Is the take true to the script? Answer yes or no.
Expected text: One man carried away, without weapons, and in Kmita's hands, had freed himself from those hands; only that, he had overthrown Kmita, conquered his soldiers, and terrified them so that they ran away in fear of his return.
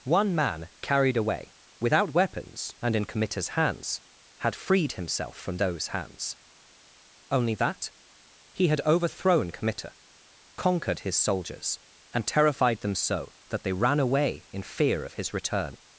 yes